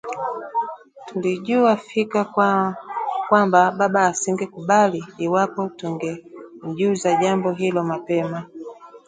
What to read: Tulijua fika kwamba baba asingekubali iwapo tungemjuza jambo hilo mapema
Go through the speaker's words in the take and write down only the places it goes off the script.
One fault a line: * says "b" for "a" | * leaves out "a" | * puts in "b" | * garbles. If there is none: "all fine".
all fine